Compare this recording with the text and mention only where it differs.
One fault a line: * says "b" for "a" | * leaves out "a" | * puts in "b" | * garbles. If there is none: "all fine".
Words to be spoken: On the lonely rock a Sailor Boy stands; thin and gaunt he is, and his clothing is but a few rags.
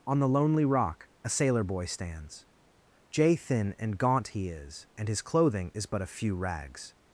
* puts in "jay"